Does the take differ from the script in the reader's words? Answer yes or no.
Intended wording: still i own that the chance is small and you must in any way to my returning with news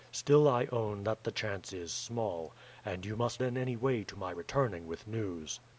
no